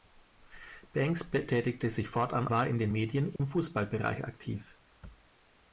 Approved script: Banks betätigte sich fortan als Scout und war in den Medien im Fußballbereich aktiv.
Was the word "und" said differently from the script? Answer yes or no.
yes